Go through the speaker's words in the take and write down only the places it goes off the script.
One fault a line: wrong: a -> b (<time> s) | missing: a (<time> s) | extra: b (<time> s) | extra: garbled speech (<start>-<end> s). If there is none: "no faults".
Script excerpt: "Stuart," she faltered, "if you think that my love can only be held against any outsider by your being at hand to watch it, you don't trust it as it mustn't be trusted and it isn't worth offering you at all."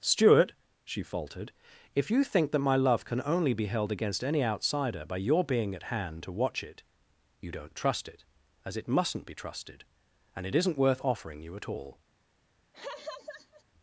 no faults